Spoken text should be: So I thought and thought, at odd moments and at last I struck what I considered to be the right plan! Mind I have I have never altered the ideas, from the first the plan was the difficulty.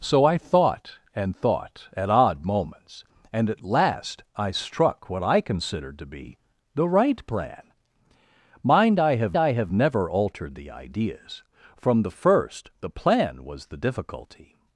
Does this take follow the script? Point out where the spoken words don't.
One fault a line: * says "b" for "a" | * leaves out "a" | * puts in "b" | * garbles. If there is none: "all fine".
all fine